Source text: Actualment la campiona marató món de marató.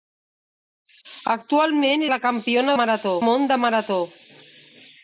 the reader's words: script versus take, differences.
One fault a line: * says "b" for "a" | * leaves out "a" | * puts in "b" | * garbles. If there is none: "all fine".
all fine